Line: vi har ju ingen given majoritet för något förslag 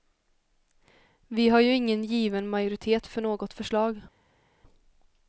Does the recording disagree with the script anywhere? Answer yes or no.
no